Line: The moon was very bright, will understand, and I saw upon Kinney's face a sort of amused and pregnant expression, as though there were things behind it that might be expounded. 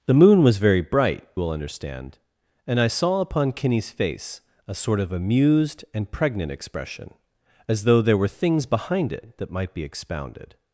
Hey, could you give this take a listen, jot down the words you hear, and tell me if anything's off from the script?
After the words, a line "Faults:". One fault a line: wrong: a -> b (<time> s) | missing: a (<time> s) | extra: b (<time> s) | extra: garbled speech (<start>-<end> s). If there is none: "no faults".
The moon was very bright, will understand, and I saw upon Kinney's face a sort of amused and pregnant expression, as though there were things behind it that might be expounded.
Faults:
no faults